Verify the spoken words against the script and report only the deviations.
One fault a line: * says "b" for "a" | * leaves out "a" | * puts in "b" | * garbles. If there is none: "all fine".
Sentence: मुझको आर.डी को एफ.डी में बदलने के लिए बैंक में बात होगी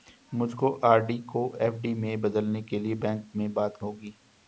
all fine